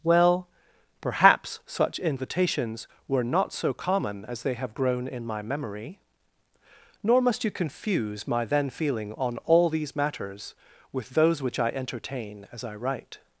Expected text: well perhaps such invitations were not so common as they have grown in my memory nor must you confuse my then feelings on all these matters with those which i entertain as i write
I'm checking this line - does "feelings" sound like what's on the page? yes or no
no